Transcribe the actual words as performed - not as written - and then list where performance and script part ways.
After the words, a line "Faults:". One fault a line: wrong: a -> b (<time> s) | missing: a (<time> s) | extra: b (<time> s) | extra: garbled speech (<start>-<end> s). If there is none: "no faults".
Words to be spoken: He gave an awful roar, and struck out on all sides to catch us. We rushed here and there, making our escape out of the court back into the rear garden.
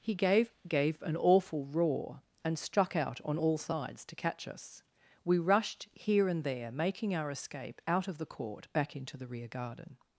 He gave gave an awful roar, and struck out on all sides to catch us. We rushed here and there, making our escape out of the court back into the rear garden.
Faults:
extra: gave (0.7 s)